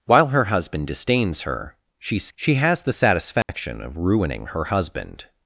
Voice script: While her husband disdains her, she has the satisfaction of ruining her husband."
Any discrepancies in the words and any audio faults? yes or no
yes